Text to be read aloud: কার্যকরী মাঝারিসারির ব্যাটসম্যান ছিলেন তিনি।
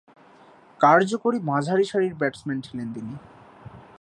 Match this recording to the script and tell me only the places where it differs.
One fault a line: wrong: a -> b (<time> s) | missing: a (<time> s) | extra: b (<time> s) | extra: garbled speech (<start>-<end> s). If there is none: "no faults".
no faults